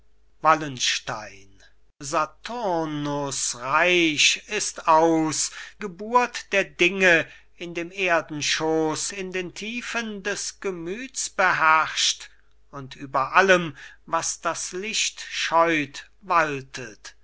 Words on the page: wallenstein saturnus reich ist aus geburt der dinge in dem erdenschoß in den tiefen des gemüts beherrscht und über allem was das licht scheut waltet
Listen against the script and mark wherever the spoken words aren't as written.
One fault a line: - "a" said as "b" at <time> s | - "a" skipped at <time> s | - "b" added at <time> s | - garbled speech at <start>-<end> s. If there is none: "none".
none